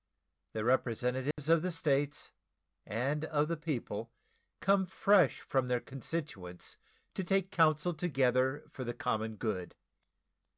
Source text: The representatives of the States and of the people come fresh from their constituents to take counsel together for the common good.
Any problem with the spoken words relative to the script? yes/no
no